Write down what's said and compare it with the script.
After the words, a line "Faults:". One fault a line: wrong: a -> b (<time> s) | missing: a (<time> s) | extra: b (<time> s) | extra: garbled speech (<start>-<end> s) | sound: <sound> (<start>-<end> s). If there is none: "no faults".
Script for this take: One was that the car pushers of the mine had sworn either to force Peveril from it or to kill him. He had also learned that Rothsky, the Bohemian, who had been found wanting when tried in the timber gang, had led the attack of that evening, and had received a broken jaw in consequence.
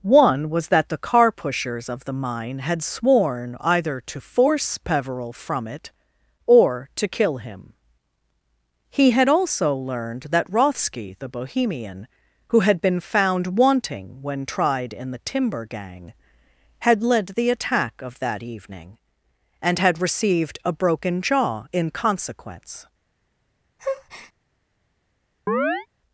One was that the car pushers of the mine had sworn either to force Peveril from it or to kill him. He had also learned that Rothsky, the Bohemian, who had been found wanting when tried in the timber gang, had led the attack of that evening, and had received a broken jaw in consequence.
Faults:
sound: breath (23.8-24.3 s)
sound: chirp (25.5-25.9 s)